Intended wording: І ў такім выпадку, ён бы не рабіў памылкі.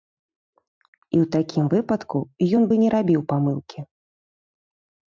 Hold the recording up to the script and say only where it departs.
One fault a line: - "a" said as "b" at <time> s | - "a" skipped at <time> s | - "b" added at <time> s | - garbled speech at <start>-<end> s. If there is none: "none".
none